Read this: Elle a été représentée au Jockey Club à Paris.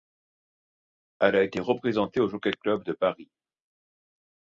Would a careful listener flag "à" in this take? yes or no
yes